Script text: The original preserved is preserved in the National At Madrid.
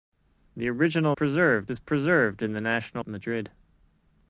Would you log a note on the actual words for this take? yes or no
no